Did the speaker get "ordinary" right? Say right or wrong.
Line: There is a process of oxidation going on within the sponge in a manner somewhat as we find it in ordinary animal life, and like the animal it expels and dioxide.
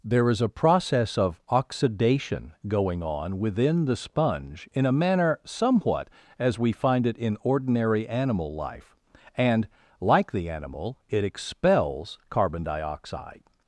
right